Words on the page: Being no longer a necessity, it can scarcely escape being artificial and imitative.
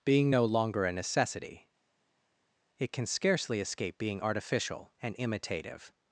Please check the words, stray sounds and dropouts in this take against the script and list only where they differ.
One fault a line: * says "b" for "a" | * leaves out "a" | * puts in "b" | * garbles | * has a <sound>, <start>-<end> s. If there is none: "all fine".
all fine